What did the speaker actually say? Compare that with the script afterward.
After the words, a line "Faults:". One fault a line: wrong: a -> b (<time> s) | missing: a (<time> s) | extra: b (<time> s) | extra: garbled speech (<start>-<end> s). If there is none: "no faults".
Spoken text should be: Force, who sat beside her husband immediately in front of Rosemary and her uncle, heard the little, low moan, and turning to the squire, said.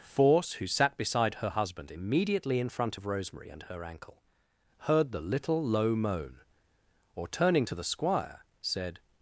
Force, who sat beside her husband immediately in front of Rosemary and her ankle, heard the little, low moan, or turning to the squire, said.
Faults:
wrong: uncle -> ankle (3.8 s)
wrong: and -> or (7.1 s)